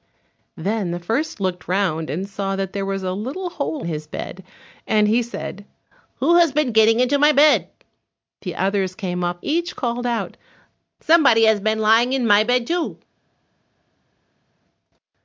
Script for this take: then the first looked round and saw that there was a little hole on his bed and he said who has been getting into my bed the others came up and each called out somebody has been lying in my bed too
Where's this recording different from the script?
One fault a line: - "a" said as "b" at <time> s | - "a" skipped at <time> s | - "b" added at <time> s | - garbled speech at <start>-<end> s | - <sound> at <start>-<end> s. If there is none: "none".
- "on" skipped at 3.9 s
- "and" skipped at 9.4 s